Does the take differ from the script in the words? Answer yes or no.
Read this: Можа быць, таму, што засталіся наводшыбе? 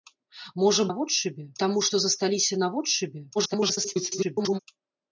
yes